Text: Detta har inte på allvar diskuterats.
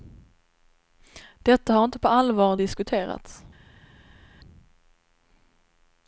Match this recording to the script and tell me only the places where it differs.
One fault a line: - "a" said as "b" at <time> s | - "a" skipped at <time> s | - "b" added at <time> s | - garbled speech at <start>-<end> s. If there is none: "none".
none